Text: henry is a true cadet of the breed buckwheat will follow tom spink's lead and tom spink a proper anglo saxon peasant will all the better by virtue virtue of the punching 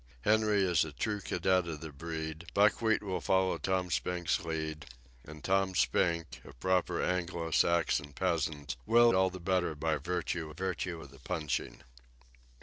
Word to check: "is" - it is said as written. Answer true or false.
true